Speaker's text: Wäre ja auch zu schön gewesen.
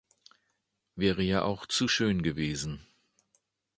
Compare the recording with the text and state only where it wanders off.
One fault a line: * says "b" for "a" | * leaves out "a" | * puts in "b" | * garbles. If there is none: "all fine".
all fine